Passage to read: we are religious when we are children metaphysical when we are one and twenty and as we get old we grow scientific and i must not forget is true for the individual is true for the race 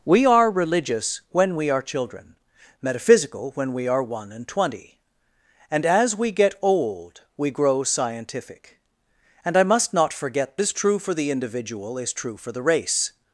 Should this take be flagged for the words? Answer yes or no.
no